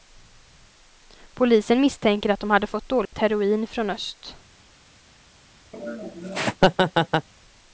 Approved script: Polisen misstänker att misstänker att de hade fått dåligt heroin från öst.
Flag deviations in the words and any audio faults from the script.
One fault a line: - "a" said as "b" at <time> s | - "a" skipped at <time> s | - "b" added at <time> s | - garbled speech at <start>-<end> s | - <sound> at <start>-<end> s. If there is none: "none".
- "misstänker att" skipped at 2.4 s
- dropout at 3.1-3.1 s
- laugh at 5.7-7.3 s